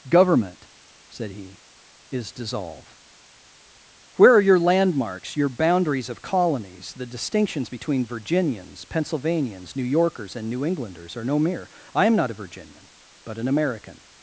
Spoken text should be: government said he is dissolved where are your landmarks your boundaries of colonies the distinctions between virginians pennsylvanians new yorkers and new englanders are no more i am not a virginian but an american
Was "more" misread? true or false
true